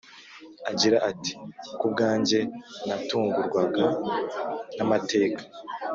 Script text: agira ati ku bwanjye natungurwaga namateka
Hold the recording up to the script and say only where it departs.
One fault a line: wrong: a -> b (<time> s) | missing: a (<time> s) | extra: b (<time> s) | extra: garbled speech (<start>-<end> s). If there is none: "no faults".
no faults